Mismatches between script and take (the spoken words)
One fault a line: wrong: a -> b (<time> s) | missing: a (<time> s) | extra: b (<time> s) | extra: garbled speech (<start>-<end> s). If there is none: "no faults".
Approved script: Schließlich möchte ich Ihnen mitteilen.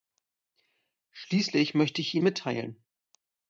no faults